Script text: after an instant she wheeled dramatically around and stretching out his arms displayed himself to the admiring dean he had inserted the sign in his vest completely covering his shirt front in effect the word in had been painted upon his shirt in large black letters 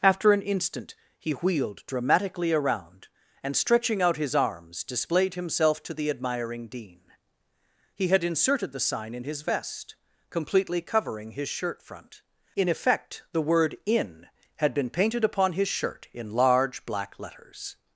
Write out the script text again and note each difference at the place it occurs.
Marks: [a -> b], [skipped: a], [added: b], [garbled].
after an instant [she -> he] wheeled dramatically around and stretching out his arms displayed himself to the admiring dean he had inserted the sign in his vest completely covering his shirt front in effect the word in had been painted upon his shirt in large black letters